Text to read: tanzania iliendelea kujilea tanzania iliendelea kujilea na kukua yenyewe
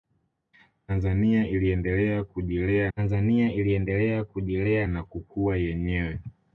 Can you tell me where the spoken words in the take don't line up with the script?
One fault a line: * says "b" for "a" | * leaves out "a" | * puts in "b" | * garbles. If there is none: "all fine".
all fine